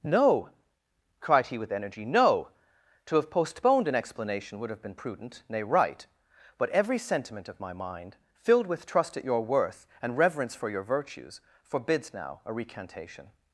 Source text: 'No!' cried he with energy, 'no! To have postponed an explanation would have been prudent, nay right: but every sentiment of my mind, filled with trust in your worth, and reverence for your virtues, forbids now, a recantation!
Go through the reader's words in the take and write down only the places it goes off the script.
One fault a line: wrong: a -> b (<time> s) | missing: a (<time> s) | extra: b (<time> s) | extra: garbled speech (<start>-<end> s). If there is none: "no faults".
wrong: in -> at (9.2 s)